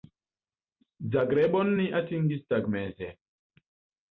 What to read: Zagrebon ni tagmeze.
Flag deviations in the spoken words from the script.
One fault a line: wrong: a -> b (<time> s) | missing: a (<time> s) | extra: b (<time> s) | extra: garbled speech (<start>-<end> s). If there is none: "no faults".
extra: atingis (2.0 s)